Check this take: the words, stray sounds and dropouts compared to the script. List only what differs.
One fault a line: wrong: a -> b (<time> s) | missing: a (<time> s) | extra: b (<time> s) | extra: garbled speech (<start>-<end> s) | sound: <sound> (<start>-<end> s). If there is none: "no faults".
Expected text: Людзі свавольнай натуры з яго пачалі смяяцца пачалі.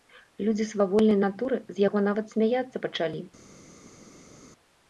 wrong: пачалі -> нават (2.1 s)